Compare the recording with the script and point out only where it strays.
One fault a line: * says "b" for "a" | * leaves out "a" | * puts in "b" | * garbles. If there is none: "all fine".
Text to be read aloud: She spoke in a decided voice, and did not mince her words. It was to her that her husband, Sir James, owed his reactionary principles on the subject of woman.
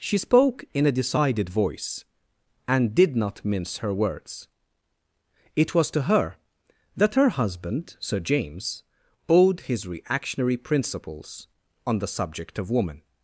all fine